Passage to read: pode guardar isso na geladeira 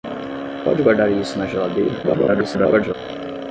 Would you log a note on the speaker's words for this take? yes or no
yes